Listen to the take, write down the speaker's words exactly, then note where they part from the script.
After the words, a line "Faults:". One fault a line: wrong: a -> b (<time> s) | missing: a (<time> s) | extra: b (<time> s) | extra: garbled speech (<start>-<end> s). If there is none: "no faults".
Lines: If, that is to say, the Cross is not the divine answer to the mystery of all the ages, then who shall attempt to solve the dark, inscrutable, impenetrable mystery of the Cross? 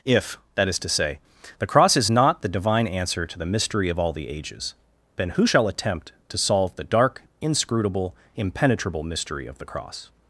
If, that is to say, the Cross is not the divine answer to the mystery of all the ages, then who shall attempt to solve the dark, inscrutable, impenetrable mystery of the Cross?
Faults:
no faults